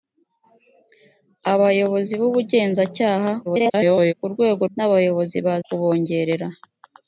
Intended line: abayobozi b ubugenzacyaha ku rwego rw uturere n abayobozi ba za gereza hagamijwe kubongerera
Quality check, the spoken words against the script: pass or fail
fail